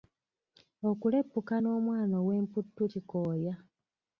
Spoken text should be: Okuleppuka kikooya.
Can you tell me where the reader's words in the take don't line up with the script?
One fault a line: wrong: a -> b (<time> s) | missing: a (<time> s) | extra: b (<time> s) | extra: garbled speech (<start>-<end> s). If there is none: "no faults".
extra: n'omwana ow'emputtu (1.6 s)